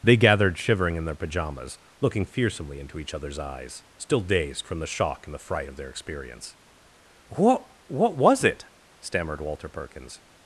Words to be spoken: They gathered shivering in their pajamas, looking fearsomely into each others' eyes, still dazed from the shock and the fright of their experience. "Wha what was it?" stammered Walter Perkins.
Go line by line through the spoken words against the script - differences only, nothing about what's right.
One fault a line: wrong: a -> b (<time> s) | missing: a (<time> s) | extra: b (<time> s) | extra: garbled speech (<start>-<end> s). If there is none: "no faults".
wrong: Wha -> What (7.3 s)